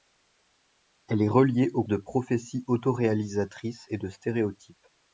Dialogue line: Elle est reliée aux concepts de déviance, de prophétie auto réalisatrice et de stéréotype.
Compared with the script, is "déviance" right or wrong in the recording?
wrong